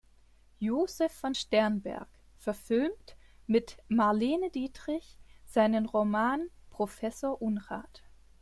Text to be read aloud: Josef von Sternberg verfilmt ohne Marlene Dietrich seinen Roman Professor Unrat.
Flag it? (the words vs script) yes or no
yes